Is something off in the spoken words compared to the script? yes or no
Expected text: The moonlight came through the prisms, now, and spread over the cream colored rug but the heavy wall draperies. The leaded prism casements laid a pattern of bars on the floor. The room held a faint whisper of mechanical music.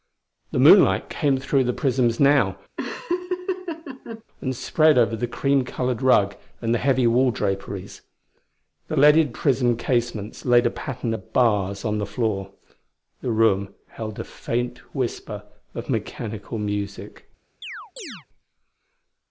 yes